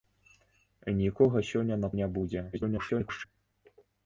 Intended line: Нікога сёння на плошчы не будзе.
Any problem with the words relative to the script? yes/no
yes